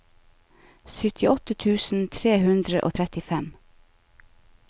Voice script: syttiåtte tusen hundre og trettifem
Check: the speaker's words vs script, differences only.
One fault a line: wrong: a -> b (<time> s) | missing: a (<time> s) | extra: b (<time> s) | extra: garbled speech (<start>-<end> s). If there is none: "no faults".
extra: tre (2.2 s)